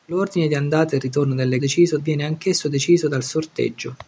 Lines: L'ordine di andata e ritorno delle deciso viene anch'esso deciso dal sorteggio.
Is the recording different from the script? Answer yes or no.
no